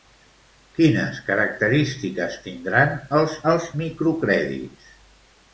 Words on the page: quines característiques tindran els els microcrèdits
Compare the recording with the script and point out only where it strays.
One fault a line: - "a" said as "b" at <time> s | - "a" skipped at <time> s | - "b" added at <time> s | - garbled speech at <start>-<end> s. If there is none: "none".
none